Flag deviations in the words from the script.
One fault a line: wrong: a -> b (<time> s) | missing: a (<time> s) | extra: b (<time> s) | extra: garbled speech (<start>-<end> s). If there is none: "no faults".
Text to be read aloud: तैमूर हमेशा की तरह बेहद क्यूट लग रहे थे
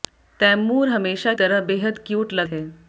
missing: की (1.3 s)
missing: रहे (2.5 s)